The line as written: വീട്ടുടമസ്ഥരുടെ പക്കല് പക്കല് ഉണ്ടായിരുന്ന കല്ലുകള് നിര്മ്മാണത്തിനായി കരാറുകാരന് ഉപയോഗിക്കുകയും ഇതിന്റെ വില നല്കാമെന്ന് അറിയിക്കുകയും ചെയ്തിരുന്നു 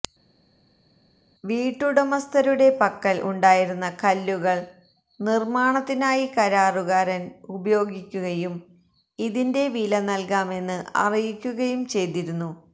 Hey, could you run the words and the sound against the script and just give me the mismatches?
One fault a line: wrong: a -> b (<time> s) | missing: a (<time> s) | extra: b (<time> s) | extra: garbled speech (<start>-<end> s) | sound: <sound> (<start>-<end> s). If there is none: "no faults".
missing: പക്കല് (3.2 s)